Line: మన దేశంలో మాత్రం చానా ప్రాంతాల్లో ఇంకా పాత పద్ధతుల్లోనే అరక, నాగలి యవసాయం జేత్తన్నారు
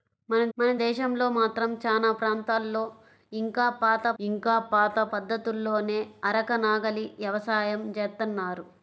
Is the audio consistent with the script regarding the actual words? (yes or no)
no